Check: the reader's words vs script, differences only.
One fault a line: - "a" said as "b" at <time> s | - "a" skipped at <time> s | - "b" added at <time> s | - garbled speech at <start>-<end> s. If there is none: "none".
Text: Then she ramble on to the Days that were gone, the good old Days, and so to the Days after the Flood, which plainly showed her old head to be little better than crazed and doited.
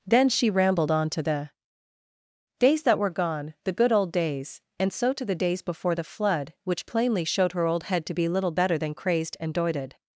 - "ramble" said as "rambled" at 0.5 s
- "after" said as "before" at 5.6 s